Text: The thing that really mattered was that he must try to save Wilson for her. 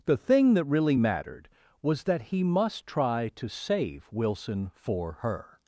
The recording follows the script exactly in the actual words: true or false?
true